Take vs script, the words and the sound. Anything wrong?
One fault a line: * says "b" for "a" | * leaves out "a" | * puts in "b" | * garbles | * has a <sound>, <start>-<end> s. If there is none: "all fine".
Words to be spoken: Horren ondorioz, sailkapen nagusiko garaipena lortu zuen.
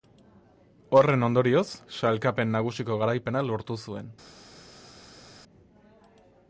all fine